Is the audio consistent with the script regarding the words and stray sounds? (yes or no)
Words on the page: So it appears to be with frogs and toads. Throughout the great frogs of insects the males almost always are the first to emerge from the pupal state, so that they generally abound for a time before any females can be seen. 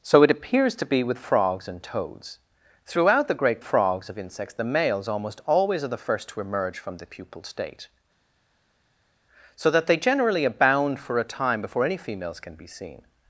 yes